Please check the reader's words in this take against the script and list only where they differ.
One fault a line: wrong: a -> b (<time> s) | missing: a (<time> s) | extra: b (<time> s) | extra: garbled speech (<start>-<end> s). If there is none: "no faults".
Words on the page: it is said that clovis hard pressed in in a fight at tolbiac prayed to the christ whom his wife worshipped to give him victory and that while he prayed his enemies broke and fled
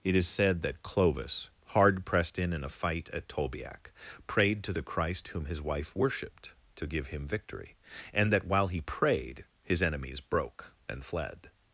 no faults